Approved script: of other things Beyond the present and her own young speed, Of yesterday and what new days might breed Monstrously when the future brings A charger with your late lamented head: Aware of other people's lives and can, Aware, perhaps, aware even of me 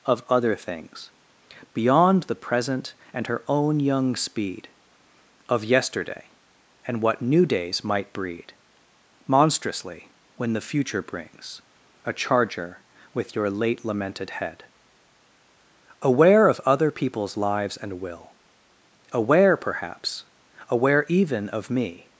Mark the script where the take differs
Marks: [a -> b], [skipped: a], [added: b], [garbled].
of other things Beyond the present and her own young speed, Of yesterday and what new days might breed Monstrously when the future brings A charger with your late lamented head: Aware of other people's lives and [can, -> will] Aware, perhaps, aware even of me